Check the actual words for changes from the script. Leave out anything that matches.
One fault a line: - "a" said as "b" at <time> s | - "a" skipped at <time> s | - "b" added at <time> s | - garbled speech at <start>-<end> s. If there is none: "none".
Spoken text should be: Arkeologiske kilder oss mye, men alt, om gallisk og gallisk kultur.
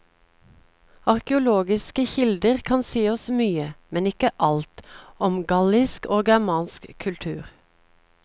- "kan si" added at 2.7 s
- "ikke" added at 4.1 s
- "gallisk" said as "germansk" at 6.3 s